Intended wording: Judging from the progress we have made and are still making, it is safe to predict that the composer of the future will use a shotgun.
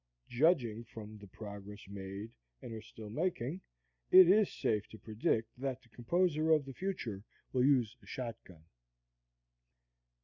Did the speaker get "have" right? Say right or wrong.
wrong